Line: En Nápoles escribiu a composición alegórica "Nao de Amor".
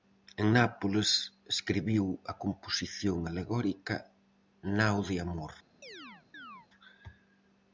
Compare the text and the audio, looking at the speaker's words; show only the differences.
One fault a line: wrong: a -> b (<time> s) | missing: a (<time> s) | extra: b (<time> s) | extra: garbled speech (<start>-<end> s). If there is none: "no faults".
no faults